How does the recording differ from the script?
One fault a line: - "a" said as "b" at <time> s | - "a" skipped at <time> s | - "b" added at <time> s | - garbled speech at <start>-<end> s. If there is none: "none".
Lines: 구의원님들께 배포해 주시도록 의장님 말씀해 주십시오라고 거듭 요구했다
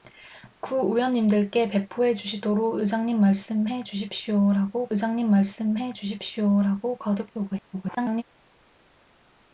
- "의장님 말씀해 주십시오라고" added at 4.9 s
- garbled speech at 7.7-8.2 s